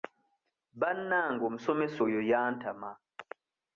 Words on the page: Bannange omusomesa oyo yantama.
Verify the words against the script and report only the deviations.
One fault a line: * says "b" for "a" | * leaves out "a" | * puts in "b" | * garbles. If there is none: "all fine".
all fine